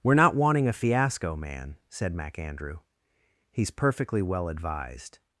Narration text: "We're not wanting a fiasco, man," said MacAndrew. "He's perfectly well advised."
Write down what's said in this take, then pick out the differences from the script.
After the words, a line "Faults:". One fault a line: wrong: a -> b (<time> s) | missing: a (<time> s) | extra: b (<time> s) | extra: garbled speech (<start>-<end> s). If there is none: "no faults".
"We're not wanting a fiasco, man," said MacAndrew. "He's perfectly well advised."
Faults:
no faults